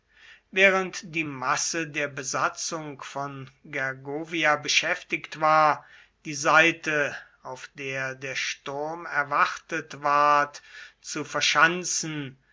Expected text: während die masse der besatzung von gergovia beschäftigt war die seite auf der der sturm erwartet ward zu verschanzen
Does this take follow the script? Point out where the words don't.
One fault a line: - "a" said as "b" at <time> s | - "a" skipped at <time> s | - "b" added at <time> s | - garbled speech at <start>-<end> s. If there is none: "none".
none